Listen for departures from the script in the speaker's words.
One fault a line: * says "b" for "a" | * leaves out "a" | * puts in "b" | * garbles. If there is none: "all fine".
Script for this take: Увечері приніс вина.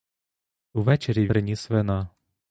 all fine